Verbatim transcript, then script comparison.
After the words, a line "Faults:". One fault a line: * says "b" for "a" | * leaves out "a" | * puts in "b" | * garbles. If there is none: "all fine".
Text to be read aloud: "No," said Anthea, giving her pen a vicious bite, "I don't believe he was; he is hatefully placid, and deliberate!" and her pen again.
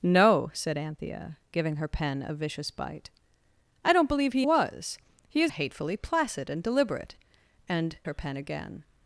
"No," said Anthea, giving her pen a vicious bite, "I don't believe he was; he is hatefully placid, and deliberate!" and her pen again.
Faults:
all fine